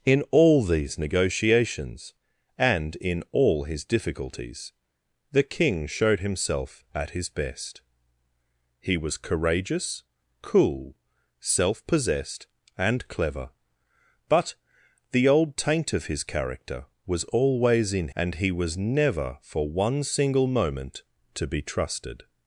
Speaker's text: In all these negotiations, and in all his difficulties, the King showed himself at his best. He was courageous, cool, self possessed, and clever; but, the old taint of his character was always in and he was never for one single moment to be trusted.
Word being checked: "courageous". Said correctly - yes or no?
yes